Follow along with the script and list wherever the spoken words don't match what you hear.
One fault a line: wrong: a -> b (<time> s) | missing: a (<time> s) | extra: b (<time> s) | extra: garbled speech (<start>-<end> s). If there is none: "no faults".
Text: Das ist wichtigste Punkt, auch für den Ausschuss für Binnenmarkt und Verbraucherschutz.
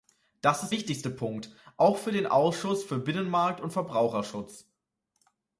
no faults